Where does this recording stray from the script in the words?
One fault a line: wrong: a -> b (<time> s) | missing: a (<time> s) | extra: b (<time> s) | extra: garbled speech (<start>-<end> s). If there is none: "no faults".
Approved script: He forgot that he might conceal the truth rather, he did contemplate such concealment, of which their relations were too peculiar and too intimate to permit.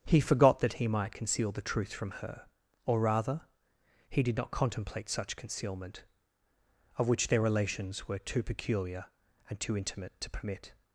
extra: from her or (1.9 s)
extra: not (4.4 s)